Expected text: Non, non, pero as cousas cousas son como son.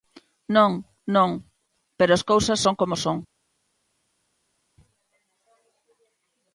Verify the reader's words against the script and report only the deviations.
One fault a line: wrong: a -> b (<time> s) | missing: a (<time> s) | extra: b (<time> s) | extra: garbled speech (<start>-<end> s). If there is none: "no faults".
missing: cousas (2.6 s)